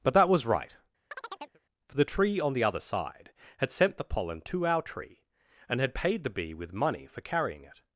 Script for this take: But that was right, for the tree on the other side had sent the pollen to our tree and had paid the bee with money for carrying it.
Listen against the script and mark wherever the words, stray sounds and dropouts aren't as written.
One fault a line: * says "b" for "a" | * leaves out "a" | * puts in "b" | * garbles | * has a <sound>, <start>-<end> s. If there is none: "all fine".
* has a chirp, 1.1-1.6 s